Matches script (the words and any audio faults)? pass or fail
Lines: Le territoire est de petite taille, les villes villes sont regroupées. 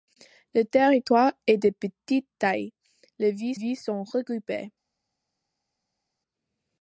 pass